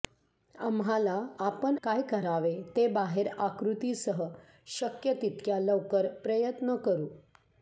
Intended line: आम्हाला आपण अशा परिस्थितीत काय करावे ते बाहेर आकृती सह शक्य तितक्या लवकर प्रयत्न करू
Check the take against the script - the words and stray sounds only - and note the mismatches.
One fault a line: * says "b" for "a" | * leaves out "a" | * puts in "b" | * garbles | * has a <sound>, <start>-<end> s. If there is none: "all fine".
* leaves out "अशा परिस्थितीत"